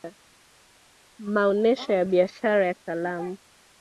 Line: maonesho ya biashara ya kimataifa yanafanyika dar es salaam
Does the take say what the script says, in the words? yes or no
no